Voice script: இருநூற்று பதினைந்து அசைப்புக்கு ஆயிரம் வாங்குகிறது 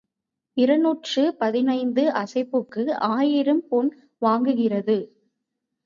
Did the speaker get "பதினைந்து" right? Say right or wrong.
right